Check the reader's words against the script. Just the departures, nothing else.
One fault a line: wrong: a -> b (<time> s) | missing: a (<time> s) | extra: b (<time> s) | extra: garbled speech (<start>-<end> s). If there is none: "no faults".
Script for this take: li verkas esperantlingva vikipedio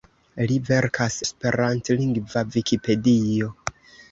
no faults